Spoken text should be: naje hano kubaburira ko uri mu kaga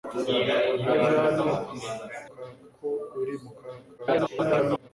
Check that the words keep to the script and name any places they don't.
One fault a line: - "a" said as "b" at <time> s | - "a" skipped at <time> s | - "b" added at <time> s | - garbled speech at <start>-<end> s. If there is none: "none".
- "kubaburira" said as "kaga" at 2.3 s
- garbled speech at 4.0-4.9 s